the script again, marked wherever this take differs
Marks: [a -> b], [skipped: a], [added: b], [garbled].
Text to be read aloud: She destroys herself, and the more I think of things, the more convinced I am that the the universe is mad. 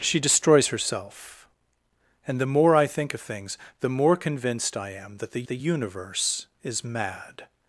She destroys herself, and the more I think of things, the more convinced I am that the the universe is mad.